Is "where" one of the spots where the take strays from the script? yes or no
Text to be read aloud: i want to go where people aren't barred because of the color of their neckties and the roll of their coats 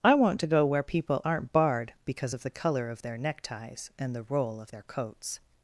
no